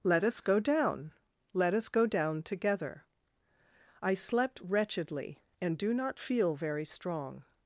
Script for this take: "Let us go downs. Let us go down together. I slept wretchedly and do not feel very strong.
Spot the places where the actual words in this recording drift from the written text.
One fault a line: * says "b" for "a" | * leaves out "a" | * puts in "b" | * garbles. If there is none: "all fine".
* says "down" for "downs"